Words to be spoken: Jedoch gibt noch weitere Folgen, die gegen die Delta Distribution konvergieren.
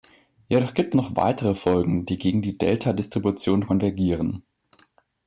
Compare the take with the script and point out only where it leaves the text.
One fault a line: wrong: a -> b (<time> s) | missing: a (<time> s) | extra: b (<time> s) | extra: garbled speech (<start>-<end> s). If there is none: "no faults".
no faults